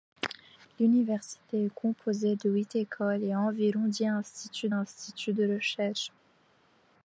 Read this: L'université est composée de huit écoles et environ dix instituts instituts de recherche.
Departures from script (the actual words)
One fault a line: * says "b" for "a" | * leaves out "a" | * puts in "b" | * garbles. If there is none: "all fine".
all fine